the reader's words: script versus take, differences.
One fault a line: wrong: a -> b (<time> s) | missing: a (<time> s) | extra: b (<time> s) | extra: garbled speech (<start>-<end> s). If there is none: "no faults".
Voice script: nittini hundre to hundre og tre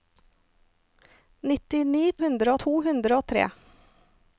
no faults